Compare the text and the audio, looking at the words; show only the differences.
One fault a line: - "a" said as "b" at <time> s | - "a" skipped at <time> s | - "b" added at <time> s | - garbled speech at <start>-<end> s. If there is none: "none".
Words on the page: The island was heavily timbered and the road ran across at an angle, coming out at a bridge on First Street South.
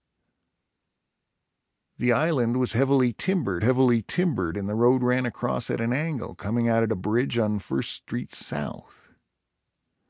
- "heavily timbered" added at 3.6 s